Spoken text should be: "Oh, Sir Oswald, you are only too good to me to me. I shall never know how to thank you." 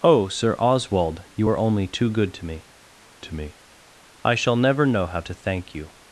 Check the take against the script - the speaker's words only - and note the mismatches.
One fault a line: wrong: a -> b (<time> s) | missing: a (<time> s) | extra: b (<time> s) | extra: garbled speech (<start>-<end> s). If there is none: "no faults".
no faults